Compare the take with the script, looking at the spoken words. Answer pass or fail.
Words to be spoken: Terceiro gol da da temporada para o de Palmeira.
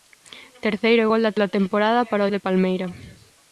pass